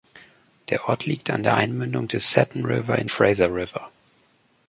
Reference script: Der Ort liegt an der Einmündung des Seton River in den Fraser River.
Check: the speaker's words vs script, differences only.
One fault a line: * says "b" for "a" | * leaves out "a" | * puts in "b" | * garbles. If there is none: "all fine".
* leaves out "den"